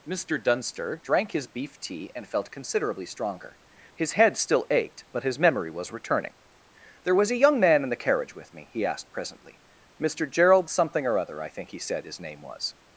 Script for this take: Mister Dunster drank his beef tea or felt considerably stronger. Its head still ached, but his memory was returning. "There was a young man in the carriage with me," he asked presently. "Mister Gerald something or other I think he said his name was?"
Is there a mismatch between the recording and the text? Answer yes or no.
yes